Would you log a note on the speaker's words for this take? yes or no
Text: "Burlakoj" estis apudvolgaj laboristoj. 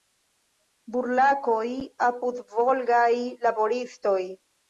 yes